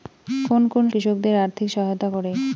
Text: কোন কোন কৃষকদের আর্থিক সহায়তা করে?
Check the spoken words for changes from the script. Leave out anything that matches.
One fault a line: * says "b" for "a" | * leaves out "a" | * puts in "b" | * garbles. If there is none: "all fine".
all fine